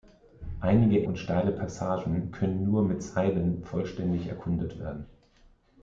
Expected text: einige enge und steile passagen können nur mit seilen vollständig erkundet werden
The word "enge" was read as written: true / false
false